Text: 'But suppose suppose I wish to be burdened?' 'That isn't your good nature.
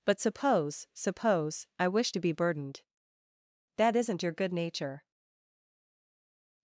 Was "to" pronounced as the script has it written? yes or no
yes